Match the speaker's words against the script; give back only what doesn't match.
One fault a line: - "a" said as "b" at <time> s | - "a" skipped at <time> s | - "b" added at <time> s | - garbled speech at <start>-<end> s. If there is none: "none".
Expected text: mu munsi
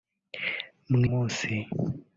none